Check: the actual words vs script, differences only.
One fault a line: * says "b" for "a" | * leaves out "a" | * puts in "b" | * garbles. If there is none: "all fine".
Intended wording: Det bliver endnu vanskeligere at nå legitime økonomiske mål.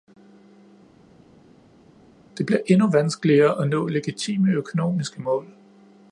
all fine